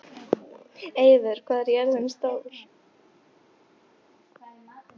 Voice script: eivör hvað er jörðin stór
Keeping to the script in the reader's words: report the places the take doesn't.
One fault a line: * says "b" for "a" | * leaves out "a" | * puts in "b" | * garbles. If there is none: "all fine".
all fine